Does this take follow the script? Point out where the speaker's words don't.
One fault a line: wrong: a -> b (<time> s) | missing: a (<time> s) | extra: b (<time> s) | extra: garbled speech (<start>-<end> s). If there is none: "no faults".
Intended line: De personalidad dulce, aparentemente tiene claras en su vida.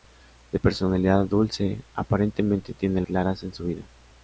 no faults